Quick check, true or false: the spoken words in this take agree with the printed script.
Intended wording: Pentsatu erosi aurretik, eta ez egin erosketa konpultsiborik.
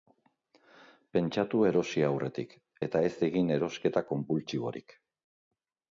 true